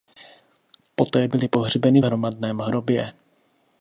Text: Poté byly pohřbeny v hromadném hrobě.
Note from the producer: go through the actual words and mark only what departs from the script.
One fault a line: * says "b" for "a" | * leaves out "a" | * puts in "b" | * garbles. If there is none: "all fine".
all fine